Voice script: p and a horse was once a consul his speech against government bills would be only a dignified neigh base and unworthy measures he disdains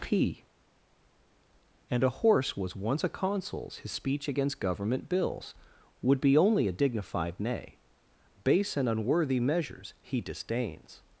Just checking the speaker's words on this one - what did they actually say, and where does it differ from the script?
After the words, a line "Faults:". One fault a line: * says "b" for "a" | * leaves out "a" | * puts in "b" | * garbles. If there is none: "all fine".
p and a horse was once a consuls his speech against government bills would be only a dignified neigh base and unworthy measures he disdains
Faults:
* says "consuls" for "consul"